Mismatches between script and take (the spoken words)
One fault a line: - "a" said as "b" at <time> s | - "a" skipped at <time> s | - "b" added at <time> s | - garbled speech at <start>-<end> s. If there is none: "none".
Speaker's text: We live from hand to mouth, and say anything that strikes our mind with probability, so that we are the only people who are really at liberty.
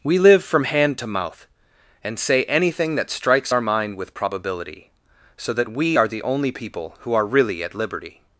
none